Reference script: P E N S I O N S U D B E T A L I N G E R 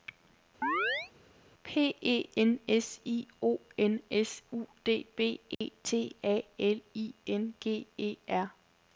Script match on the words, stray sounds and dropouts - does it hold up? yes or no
no